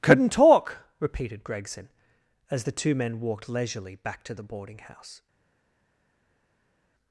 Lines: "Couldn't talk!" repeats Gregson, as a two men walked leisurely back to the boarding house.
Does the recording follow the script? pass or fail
fail